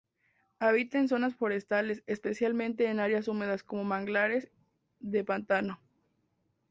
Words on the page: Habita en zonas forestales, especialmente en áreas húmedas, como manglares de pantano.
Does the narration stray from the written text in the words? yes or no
no